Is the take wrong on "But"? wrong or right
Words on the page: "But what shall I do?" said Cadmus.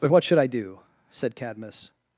right